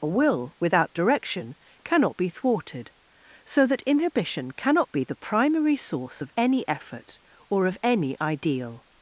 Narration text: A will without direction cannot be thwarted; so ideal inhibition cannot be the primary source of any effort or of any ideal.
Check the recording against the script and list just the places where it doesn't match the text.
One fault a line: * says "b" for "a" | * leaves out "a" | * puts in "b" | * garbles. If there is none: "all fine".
* says "that" for "ideal"